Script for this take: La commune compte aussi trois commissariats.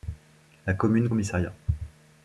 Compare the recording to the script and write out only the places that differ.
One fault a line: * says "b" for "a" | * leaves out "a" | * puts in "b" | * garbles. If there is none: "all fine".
* leaves out "compte aussi trois"